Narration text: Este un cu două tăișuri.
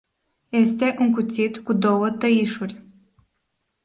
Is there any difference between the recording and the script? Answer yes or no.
yes